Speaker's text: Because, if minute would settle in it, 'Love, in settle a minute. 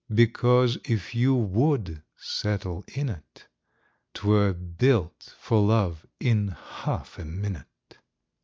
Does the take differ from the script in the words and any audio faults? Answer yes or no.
yes